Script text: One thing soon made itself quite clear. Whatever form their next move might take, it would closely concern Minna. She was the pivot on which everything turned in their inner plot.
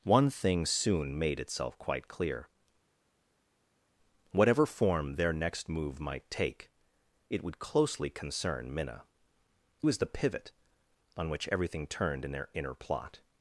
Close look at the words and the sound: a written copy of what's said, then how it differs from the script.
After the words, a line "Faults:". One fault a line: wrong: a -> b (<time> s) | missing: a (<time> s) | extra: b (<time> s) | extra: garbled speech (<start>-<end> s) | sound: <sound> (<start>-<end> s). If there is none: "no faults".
One thing soon made itself quite clear. Whatever form their next move might take, it would closely concern Minna. Was the pivot on which everything turned in their inner plot.
Faults:
missing: She (9.0 s)